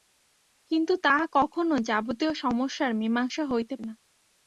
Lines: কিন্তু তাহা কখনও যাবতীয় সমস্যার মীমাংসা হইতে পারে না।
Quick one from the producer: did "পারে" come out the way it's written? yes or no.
no